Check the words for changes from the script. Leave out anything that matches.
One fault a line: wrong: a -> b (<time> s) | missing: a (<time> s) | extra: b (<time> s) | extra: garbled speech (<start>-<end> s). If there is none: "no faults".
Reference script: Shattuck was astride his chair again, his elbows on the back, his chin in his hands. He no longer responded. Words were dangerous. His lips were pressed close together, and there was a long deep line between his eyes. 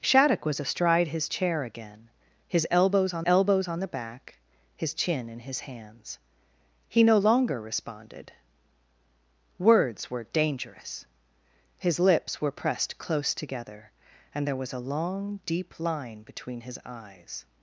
extra: elbows on (3.2 s)